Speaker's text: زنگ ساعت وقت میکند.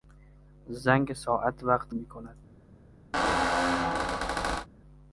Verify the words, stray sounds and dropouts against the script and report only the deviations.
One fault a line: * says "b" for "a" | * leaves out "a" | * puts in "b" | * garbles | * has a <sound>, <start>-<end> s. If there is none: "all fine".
* has a squeak, 3.1-4.7 s